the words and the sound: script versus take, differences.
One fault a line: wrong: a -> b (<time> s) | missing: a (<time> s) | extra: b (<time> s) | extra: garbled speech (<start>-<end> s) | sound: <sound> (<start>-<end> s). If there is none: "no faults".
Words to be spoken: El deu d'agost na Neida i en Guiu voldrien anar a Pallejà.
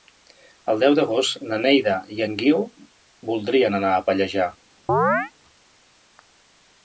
sound: chirp (4.9-5.3 s)